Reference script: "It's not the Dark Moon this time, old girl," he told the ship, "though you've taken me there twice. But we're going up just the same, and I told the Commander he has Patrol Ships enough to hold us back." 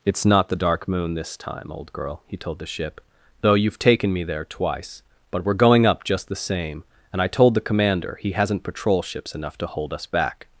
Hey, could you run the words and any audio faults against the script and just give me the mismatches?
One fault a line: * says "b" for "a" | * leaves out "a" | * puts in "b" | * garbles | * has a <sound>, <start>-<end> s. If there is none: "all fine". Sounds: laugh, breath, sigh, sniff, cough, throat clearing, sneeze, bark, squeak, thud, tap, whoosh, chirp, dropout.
* says "hasn't" for "has"